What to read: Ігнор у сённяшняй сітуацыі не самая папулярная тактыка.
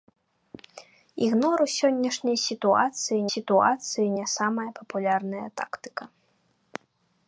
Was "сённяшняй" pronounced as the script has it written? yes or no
yes